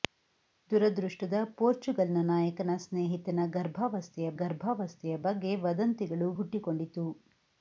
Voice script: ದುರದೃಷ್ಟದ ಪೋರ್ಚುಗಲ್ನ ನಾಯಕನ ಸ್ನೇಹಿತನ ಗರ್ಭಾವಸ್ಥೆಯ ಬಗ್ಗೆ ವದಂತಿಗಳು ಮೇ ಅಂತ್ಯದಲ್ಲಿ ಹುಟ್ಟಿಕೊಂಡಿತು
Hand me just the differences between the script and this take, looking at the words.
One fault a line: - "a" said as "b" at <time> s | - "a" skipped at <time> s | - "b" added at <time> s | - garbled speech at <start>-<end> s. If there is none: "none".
- "ಗರ್ಭಾವಸ್ಥೆಯ" added at 4.3 s
- "ಮೇ ಅಂತ್ಯದಲ್ಲಿ" skipped at 6.3 s